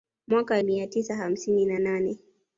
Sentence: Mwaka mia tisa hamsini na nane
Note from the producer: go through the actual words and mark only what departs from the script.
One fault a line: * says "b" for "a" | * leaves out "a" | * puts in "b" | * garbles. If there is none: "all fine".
all fine